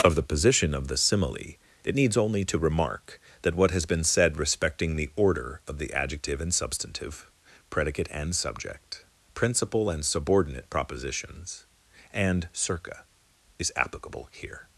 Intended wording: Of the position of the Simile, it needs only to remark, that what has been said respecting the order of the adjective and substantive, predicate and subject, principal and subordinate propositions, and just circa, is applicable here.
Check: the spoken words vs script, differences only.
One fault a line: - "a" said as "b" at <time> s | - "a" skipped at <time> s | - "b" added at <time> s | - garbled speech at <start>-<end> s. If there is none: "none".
- "just" skipped at 12.5 s